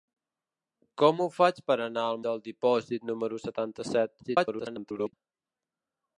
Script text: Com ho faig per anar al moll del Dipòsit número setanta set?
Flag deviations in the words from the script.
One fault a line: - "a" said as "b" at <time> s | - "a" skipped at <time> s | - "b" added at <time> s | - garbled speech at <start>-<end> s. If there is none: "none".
- "moll" skipped at 2.2 s
- garbled speech at 4.2-5.1 s